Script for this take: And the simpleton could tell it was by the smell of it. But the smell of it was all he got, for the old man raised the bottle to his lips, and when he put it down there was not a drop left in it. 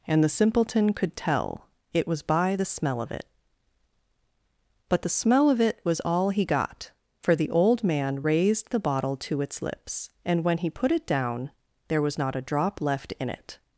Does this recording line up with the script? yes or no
no